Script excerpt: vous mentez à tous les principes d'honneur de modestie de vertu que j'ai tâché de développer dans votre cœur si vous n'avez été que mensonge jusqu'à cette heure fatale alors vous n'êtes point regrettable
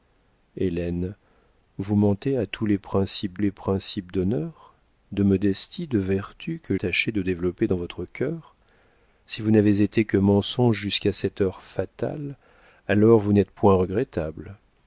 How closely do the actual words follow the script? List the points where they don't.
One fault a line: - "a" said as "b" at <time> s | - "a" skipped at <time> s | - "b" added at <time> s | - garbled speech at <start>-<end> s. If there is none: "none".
- "les principes" added at 3.4 s
- "j'ai" skipped at 6.8 s